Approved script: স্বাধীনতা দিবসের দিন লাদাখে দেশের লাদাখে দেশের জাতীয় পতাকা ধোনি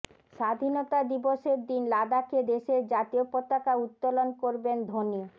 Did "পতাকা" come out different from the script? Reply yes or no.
yes